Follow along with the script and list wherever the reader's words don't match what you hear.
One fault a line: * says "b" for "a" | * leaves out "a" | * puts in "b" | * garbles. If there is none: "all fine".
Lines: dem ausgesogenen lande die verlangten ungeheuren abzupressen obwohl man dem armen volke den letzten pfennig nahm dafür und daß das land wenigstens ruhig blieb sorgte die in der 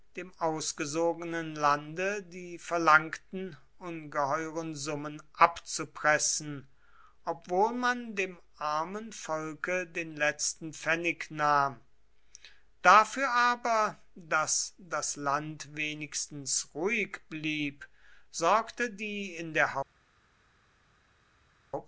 * puts in "summen"
* says "aber" for "und"